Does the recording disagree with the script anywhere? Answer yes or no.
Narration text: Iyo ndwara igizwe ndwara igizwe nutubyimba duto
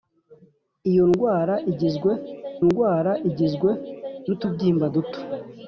no